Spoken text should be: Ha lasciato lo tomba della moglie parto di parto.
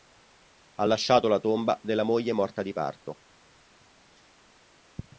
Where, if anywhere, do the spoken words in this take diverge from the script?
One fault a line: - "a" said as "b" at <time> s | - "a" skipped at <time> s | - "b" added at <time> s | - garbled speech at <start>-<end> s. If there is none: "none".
- "lo" said as "la" at 1.3 s
- "parto" said as "morta" at 2.3 s